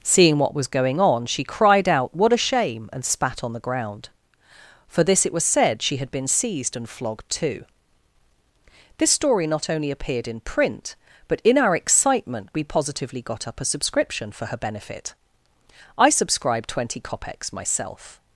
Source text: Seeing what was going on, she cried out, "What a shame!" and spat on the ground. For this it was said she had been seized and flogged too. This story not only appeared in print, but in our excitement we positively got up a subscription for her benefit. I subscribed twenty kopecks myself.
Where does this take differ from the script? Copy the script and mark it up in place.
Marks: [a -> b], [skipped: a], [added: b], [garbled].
Seeing what was going on, she cried out, "What a shame!" and spat on the ground. For this it was said she had been seized and flogged too. This story not only appeared in print, but in our excitement we positively got up a subscription for her benefit. I subscribed twenty kopecks myself.